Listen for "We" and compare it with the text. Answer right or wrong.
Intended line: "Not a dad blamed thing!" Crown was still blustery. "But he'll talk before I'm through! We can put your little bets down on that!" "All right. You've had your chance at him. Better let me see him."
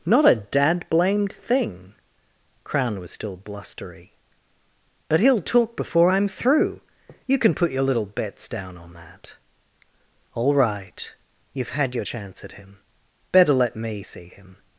wrong